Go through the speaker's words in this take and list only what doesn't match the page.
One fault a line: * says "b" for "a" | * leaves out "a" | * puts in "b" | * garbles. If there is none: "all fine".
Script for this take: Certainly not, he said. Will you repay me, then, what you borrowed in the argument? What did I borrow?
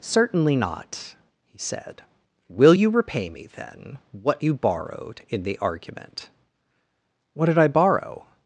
all fine